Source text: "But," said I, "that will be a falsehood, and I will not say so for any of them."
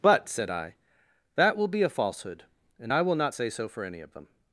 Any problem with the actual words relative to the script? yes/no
no